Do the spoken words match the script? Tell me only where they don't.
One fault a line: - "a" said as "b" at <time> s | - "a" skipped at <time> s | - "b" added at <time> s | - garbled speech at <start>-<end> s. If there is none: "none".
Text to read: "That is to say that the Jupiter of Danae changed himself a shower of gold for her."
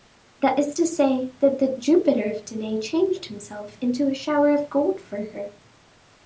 - "into" added at 3.8 s